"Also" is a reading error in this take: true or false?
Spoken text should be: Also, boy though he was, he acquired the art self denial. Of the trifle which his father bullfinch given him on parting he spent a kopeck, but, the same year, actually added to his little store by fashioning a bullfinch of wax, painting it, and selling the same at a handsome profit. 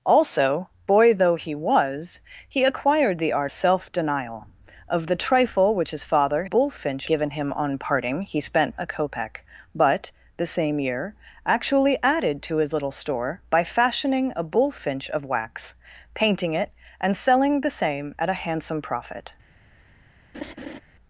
false